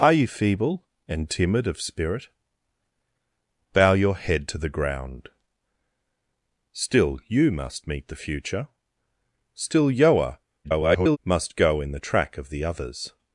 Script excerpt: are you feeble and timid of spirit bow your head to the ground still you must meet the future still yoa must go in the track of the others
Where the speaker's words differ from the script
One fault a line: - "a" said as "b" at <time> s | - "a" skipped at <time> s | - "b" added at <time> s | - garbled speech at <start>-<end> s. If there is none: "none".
- garbled speech at 10.6-11.2 s